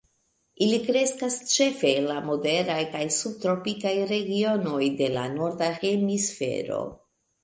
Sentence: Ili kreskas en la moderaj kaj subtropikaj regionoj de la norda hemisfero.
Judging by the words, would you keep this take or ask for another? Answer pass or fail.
fail